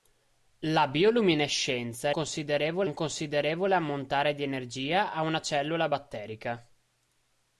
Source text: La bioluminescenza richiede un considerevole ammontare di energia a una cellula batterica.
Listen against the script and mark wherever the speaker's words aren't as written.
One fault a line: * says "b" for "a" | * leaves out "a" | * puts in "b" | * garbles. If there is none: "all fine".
* says "considerevole" for "richiede"